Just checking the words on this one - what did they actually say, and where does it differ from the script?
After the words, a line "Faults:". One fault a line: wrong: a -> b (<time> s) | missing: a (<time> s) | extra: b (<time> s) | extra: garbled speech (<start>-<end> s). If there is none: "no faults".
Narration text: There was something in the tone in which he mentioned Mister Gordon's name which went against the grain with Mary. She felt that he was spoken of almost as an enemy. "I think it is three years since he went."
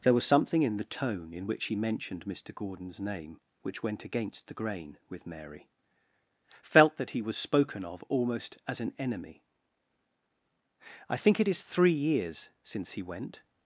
There was something in the tone in which he mentioned Mister Gordon's name which went against the grain with Mary. felt that he was spoken of almost as an enemy. "I think it is three years since he went."
Faults:
missing: She (5.7 s)